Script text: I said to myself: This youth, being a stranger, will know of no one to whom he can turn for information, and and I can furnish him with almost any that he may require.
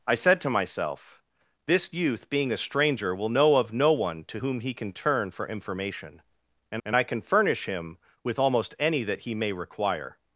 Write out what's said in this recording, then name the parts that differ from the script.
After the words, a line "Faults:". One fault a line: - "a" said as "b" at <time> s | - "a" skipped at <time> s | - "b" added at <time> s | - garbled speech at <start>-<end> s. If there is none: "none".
I said to myself: This youth, being a stranger, will know of no one to whom he can turn for information, and and I can furnish him with almost any that he may require.
Faults:
none